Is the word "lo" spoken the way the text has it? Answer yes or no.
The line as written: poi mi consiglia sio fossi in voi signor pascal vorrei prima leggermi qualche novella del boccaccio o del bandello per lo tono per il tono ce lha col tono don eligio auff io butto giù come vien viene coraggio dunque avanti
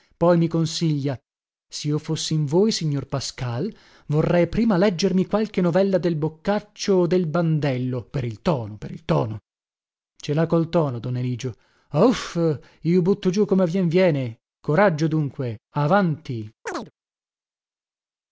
no